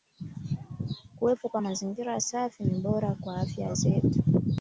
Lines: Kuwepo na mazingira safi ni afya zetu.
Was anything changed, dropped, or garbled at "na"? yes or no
yes